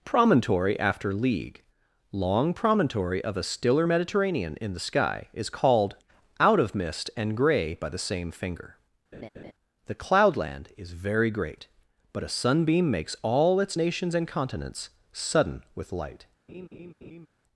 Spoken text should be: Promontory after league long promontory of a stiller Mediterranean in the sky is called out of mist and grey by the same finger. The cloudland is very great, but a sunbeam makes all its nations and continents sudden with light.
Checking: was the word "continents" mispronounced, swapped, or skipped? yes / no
no